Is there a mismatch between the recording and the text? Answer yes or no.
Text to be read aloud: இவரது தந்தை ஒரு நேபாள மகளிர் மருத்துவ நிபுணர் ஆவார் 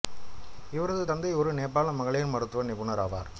no